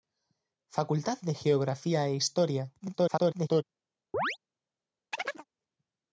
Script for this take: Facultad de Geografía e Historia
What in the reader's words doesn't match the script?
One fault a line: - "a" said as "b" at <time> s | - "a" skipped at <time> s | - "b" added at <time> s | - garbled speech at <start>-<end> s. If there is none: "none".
- garbled speech at 2.8-3.6 s